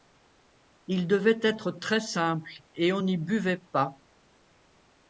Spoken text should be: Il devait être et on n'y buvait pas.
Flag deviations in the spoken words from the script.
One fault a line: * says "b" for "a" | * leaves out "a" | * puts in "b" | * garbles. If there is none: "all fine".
* puts in "très simple"